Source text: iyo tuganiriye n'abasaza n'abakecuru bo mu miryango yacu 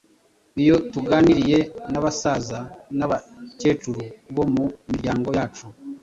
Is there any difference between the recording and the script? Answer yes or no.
no